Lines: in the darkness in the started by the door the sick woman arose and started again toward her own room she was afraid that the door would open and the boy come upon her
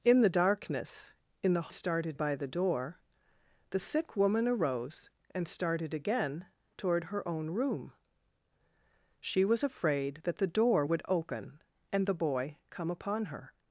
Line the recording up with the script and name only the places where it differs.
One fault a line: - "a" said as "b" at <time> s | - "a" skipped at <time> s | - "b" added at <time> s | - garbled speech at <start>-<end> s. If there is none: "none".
none